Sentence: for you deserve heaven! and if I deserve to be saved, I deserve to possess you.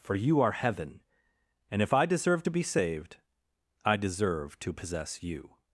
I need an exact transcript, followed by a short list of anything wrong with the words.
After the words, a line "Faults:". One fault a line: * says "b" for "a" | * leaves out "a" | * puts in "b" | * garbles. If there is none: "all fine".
for you are heaven! and if I deserve to be saved, I deserve to possess you.
Faults:
* says "are" for "deserve"